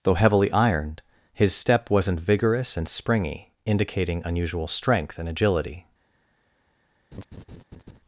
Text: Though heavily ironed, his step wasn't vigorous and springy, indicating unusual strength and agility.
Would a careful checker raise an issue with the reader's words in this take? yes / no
no